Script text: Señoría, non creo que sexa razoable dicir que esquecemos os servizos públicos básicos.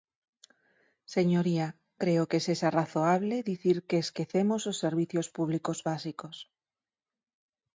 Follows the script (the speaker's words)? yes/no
no